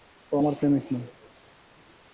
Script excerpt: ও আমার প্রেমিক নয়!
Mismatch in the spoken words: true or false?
false